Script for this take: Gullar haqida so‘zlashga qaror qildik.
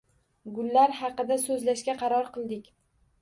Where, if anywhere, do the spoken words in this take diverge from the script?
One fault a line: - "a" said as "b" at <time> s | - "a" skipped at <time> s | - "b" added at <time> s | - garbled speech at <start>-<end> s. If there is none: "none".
none